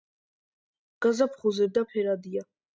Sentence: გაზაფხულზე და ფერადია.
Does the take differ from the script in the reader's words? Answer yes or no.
no